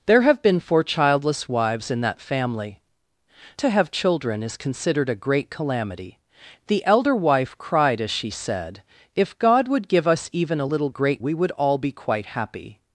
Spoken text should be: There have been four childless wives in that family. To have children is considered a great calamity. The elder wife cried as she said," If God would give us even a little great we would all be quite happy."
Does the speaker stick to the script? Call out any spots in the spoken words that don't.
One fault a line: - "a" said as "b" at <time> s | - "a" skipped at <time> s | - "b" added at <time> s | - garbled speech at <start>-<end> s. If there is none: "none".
none